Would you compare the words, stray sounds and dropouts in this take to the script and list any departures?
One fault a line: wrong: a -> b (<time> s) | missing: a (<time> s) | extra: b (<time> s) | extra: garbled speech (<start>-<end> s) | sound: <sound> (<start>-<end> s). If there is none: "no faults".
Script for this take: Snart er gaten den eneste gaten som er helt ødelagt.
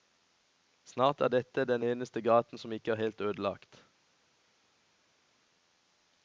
wrong: gaten -> dette (1.4 s)
extra: ikke (2.7 s)